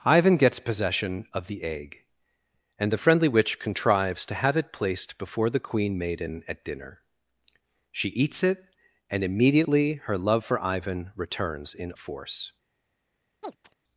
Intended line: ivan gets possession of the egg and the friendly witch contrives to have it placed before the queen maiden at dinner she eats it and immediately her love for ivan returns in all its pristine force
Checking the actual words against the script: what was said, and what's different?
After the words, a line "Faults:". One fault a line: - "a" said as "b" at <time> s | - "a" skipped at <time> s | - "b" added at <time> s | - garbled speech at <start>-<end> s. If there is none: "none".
ivan gets possession of the egg and the friendly witch contrives to have it placed before the queen maiden at dinner she eats it and immediately her love for ivan returns in force
Faults:
- "all its pristine" skipped at 11.9 s